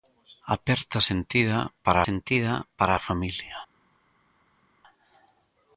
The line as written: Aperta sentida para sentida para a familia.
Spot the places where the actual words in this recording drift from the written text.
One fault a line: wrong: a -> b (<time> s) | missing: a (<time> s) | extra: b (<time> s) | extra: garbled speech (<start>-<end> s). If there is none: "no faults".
no faults